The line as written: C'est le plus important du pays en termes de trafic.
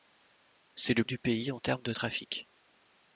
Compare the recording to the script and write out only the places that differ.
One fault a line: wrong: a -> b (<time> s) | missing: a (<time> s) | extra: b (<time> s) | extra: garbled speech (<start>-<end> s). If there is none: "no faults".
missing: plus important (1.0 s)